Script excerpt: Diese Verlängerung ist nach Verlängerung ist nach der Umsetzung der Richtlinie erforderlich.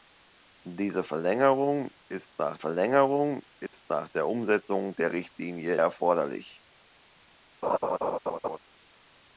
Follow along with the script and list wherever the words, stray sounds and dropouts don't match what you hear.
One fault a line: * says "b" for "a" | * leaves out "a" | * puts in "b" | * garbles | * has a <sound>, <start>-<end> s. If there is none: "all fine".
* has a dropout, 3.7-3.7 s
* has a laugh, 7.6-8.6 s